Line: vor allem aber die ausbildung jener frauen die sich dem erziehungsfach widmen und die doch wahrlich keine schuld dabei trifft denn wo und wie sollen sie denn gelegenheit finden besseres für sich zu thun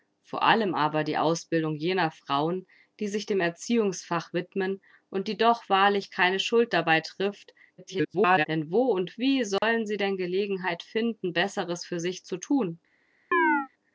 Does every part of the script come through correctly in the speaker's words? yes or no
no